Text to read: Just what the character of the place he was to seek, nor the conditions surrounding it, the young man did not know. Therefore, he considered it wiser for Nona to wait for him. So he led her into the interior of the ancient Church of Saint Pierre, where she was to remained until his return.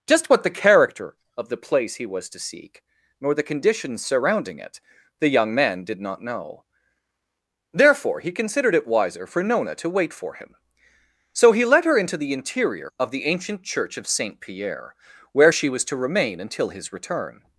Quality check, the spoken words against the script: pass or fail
fail